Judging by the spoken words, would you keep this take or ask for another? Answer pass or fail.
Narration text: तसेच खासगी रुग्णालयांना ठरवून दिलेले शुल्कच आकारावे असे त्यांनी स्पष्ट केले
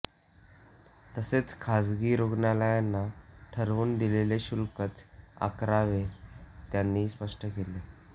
fail